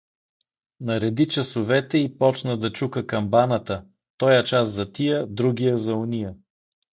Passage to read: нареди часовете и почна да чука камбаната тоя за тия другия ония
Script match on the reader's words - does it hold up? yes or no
no